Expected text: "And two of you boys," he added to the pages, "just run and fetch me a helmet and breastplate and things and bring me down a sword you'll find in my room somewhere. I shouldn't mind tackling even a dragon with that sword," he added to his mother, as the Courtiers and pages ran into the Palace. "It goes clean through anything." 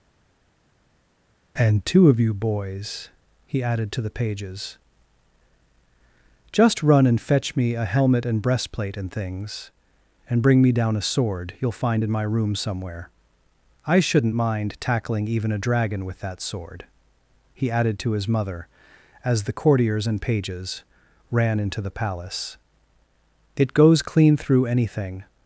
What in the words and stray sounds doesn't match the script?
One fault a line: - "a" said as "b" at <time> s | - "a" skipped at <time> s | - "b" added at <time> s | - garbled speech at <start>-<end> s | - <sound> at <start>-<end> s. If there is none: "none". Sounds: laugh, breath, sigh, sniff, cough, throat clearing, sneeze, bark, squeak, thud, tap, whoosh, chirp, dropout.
none